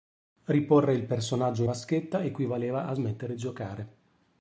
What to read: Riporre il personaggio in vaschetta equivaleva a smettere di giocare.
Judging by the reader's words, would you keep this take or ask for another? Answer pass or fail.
fail